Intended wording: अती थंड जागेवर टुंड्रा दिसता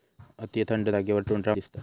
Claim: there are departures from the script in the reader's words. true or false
false